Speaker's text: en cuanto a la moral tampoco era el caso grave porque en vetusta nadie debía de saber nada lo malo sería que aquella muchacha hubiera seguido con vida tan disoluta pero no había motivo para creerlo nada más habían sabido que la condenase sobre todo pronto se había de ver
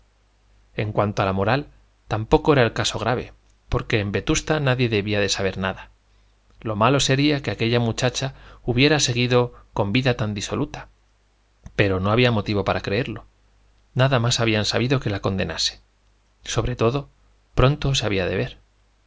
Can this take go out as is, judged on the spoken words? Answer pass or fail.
pass